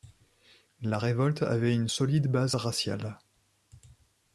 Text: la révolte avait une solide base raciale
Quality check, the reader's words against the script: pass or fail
pass